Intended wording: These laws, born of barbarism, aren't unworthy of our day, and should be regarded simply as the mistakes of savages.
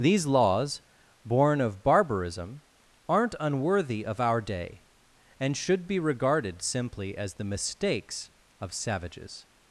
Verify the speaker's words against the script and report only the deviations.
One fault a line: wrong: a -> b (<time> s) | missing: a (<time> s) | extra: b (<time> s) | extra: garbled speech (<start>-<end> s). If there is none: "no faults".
no faults